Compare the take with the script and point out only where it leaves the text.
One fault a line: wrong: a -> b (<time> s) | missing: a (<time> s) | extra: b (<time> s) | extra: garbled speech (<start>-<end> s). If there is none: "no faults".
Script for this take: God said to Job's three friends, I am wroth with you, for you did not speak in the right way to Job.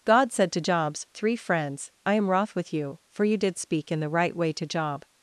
missing: not (3.6 s)